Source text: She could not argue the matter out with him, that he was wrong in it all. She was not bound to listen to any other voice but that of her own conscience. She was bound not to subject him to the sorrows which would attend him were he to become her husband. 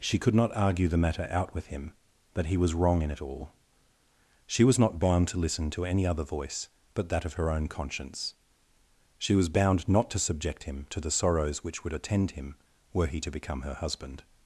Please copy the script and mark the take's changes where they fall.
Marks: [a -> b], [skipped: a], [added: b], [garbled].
She could not argue the matter out with him, that he was wrong in it all. She was not bound to listen to any other voice but that of her own conscience. She was bound not to subject him to the sorrows which would attend him were he to become her husband.